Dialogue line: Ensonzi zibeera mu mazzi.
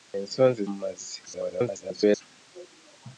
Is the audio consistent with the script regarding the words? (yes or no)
no